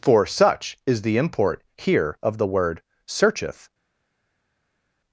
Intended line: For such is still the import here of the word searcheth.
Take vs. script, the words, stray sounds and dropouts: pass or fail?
fail